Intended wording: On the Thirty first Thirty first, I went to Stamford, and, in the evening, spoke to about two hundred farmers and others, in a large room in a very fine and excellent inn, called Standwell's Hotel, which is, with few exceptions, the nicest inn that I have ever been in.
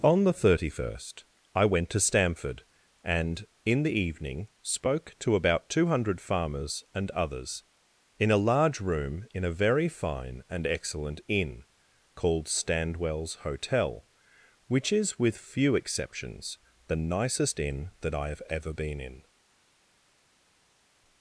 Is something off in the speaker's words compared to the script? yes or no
yes